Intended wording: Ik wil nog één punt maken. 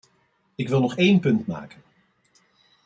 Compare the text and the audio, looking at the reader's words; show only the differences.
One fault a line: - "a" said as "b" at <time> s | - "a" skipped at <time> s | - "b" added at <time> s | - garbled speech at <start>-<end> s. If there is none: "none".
none